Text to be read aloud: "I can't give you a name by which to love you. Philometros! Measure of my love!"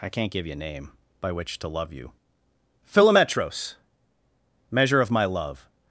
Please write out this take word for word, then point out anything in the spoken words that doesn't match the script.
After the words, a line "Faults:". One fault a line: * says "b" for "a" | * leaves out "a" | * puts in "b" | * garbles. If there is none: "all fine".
"I can't give you a name by which to love you. Philometros! Measure of my love!"
Faults:
all fine